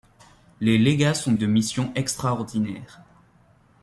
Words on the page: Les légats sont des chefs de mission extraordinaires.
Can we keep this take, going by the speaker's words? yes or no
no